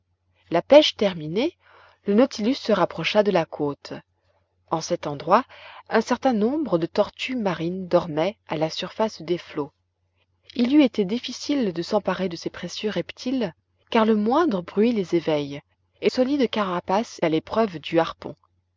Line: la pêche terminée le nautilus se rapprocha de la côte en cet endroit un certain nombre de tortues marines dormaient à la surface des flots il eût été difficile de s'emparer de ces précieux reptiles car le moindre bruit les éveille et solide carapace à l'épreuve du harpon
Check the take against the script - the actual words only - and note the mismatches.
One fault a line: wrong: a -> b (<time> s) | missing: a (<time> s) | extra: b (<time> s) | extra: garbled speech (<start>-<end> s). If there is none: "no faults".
no faults